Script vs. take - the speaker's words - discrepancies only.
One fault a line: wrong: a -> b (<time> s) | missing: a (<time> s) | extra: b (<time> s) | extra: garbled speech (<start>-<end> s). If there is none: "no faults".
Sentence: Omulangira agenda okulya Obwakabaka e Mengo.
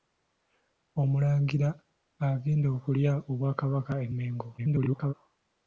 extra: garbled speech (4.6-5.1 s)